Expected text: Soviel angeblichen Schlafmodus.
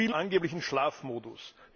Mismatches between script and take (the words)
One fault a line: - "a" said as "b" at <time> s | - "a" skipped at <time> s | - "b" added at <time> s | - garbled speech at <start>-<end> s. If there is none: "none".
none